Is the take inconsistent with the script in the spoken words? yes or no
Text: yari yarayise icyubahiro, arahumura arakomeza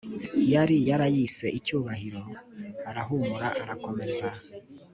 no